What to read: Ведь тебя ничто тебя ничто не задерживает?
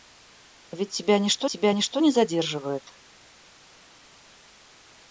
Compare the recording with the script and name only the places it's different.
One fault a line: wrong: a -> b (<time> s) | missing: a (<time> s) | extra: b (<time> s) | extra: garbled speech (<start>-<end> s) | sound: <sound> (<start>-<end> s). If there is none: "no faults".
no faults